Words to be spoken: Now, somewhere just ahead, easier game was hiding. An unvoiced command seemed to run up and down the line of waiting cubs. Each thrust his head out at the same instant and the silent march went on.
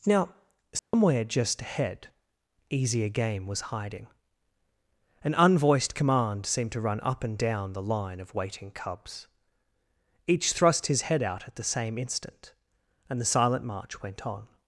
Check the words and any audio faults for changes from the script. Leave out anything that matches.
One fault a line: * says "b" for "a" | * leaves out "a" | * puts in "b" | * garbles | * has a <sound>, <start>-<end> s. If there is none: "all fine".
* has a dropout, 0.8-0.9 s